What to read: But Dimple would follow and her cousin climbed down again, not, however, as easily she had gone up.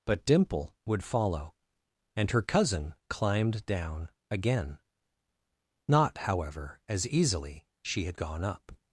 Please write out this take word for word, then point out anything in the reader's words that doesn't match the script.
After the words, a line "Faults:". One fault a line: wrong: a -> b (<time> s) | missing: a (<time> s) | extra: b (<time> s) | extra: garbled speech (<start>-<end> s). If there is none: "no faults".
But Dimple would follow and her cousin climbed down again, not, however, as easily she had gone up.
Faults:
no faults